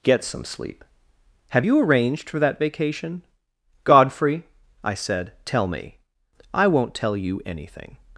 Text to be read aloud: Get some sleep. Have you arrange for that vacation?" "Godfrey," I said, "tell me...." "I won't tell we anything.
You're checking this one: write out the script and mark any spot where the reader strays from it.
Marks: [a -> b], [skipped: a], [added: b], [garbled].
Get some sleep. Have you [arrange -> arranged] for that vacation?" "Godfrey," I said, "tell me...." "I won't tell [we -> you] anything.